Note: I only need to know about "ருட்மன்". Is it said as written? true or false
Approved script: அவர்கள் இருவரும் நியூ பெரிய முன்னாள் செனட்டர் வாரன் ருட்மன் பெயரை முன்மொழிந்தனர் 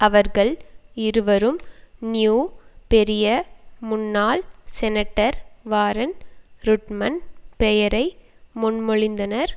true